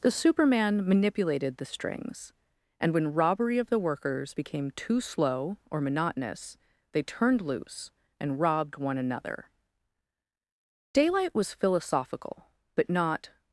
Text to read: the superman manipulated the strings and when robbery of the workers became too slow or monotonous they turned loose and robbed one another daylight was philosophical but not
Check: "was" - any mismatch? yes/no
no